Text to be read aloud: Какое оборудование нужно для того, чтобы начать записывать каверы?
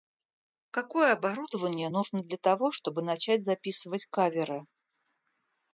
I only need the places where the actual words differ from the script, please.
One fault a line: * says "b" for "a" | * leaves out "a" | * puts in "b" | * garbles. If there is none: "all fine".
all fine